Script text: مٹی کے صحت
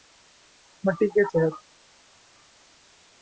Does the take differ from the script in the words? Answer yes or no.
no